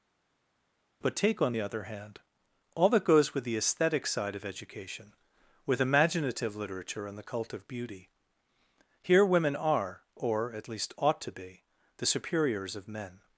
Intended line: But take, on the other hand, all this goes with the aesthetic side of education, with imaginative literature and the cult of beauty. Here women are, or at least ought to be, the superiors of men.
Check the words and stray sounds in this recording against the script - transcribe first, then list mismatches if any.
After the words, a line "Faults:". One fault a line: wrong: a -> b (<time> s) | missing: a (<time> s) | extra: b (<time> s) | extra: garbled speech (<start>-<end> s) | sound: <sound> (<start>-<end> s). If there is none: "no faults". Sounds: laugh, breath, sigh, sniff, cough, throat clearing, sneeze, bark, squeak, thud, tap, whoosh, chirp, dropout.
But take, on the other hand, all that goes with the aesthetic side of education, with imaginative literature and the cult of beauty. Here women are, or at least ought to be, the superiors of men.
Faults:
wrong: this -> that (2.9 s)